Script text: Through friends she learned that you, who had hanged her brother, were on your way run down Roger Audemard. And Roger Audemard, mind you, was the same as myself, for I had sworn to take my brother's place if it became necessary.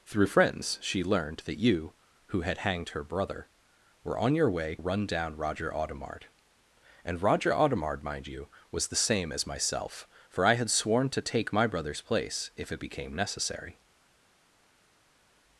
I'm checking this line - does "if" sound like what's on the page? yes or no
yes